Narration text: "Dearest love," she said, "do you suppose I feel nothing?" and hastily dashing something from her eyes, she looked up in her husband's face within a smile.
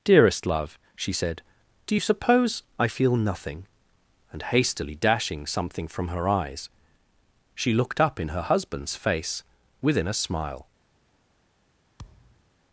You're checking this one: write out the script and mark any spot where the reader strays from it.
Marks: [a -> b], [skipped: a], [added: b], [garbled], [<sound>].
"Dearest love," she said, "do you suppose I feel nothing?" and hastily dashing something from her eyes, she looked up in her husband's face within a smile. [thud]